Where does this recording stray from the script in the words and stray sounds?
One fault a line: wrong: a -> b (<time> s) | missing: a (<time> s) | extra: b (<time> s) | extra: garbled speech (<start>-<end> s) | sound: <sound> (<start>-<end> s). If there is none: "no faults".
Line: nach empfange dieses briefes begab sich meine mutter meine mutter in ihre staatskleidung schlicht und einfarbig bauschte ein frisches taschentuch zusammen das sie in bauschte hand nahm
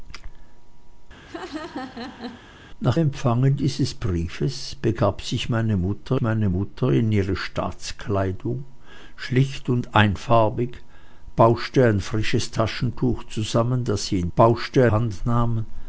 sound: laugh (1.2-2.5 s)